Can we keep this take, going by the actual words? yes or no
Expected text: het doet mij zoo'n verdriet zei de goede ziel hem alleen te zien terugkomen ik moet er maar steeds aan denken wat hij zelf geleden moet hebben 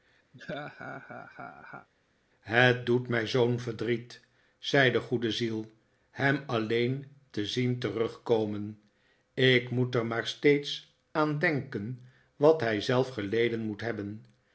yes